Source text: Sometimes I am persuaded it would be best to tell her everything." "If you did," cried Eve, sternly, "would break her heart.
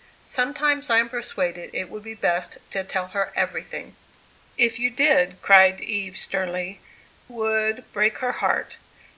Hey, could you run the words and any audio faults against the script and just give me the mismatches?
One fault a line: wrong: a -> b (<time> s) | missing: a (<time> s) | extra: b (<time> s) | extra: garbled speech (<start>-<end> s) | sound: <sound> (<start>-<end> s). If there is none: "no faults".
no faults